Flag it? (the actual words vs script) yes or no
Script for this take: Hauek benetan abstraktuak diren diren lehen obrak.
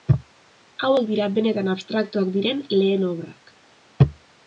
yes